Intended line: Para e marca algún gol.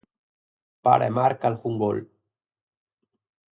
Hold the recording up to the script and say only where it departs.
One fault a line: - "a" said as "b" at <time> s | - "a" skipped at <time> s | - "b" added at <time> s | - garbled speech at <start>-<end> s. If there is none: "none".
none